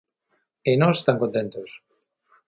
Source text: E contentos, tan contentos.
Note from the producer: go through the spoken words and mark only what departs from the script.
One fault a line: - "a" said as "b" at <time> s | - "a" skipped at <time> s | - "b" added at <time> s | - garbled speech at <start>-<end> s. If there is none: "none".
- "contentos" said as "nós" at 0.8 s